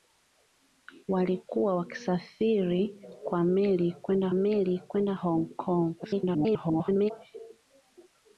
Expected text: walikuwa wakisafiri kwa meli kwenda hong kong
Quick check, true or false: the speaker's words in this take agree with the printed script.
false